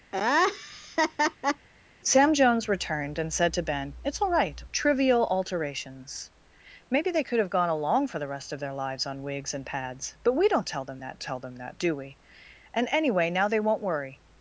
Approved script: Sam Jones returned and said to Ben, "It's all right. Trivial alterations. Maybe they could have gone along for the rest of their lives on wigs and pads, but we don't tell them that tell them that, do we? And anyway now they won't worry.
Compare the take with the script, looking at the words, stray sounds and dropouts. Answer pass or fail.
fail